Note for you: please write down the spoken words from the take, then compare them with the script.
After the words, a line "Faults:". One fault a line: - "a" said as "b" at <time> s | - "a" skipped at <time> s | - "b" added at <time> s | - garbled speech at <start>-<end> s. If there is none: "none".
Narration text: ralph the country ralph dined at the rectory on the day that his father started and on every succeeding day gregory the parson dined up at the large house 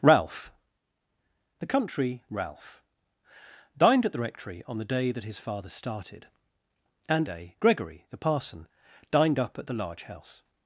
ralph the country ralph dined at the rectory on the day that his father started and day gregory the parson dined up at the large house
Faults:
- "on every succeeding" skipped at 7.3 s